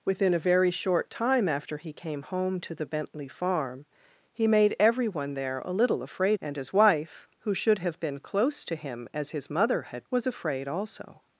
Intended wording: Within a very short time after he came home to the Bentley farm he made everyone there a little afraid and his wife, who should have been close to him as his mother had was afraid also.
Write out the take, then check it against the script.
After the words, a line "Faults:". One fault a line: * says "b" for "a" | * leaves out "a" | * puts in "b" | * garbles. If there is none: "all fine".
Within a very short time after he came home to the Bentley farm he made everyone there a little afraid and his wife, who should have been close to him as his mother had was afraid also.
Faults:
all fine